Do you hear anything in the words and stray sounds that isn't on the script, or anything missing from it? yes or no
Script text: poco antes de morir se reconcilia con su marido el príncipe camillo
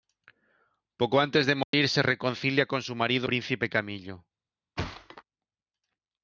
yes